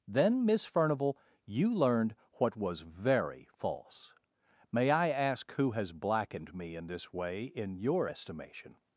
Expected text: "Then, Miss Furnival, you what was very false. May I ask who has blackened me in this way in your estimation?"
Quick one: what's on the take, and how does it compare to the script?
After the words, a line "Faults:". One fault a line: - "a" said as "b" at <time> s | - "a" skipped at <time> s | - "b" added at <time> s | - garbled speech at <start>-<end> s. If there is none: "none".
"Then, Miss Furnival, you learned what was very false. May I ask who has blackened me in this way in your estimation?"
Faults:
- "learned" added at 1.7 s